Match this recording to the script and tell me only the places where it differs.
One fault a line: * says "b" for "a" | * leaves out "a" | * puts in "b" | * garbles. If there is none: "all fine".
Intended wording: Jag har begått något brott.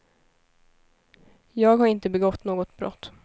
* puts in "inte"